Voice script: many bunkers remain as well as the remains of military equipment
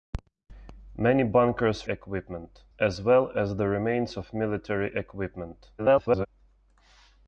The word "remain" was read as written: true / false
false